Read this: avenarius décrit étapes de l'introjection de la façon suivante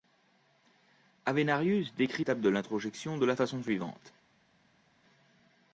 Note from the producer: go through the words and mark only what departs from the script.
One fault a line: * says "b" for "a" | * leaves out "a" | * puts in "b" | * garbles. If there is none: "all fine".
all fine